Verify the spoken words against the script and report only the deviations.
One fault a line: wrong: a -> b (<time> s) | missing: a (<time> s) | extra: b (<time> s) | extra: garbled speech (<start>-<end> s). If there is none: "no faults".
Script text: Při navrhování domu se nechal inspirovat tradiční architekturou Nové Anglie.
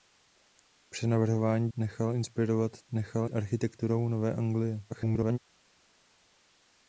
missing: domu se (1.7 s)
wrong: tradiční -> nechal (2.9 s)
extra: garbled speech (4.9-5.4 s)